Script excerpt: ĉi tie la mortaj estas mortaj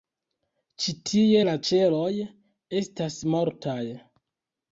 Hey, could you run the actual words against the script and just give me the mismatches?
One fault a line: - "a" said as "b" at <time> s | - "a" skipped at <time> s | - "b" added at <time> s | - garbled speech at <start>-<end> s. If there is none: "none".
- "mortaj" said as "ĉeloj" at 1.7 s